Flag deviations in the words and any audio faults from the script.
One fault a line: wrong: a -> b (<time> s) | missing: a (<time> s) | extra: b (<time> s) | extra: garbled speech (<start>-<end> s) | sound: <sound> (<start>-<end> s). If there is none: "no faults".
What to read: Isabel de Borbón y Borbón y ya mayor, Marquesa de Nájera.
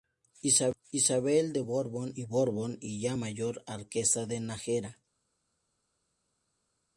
no faults